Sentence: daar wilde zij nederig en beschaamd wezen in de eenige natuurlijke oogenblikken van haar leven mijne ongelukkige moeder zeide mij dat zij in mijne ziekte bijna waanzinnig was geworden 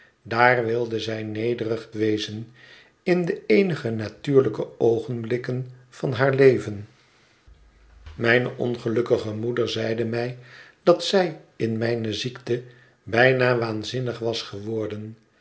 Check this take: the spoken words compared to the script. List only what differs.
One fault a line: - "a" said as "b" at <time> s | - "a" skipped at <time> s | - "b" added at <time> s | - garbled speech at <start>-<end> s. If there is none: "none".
- "en beschaamd" skipped at 1.9 s